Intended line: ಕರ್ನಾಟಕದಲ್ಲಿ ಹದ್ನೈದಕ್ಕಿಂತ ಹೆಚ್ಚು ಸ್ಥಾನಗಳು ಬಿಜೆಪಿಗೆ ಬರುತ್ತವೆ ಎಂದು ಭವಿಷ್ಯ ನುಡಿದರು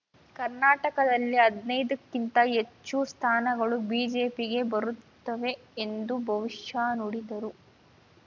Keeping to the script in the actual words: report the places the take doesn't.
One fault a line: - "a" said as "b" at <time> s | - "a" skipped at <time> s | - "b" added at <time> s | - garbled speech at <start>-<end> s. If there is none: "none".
none